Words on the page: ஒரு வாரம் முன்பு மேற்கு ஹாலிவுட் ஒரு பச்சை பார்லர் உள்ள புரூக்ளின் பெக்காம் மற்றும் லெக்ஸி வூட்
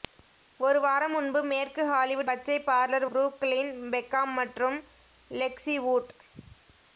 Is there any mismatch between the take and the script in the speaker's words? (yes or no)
yes